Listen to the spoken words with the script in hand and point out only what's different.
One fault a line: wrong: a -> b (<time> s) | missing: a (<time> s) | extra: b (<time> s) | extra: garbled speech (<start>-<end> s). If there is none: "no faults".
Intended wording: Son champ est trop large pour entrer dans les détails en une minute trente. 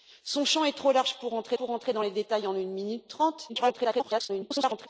extra: pour entrer (1.6 s)
extra: garbled speech (3.5-4.9 s)